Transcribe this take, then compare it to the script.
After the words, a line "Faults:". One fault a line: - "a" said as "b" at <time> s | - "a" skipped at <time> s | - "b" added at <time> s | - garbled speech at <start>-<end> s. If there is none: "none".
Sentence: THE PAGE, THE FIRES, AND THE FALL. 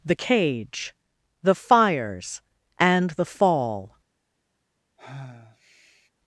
THE Cage, THE FIRES, AND THE FALL.
Faults:
- "PAGE" said as "Cage" at 0.1 s